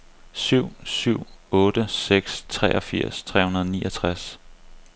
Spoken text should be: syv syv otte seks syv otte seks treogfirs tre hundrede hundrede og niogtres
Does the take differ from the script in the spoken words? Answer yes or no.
yes